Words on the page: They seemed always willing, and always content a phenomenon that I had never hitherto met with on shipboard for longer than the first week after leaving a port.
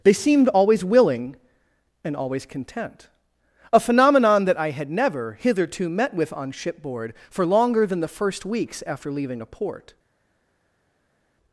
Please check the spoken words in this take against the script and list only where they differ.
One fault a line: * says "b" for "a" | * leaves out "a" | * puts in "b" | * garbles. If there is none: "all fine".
* says "weeks" for "week"